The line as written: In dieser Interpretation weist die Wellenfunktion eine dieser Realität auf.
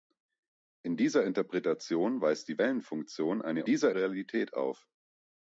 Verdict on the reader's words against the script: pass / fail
pass